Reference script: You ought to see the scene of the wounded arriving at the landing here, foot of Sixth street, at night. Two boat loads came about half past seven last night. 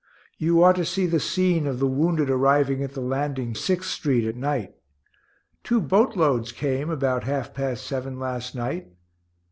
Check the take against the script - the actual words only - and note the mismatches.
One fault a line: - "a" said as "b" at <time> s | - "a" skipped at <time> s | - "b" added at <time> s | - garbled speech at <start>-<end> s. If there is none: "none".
- "here foot of" skipped at 3.5 s